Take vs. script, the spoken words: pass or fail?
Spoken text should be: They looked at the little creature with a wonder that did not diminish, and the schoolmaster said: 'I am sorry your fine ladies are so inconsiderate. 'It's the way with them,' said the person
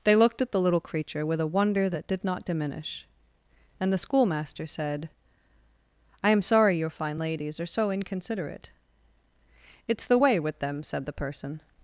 pass